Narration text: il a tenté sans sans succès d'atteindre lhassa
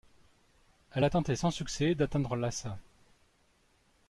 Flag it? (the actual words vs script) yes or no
yes